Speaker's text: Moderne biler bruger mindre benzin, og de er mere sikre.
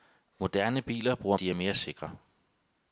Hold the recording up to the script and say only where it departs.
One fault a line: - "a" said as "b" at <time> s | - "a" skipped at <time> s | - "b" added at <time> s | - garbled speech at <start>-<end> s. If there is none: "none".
- "mindre benzin og" skipped at 1.4 s